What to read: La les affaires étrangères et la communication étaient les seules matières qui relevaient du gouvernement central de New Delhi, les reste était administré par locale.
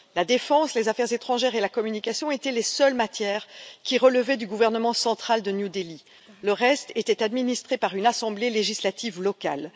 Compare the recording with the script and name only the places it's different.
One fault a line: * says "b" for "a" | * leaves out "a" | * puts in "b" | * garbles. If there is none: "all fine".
* puts in "défense"
* says "le" for "les"
* puts in "une assemblée législative"